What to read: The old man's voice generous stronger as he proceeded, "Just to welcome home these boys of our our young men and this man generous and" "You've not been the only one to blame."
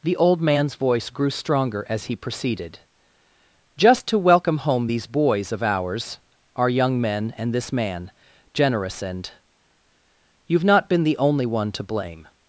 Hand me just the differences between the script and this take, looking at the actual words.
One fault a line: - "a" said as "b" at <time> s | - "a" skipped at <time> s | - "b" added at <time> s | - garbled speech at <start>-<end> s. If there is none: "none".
- "generous" said as "grew" at 1.1 s
- "our" said as "ours" at 5.6 s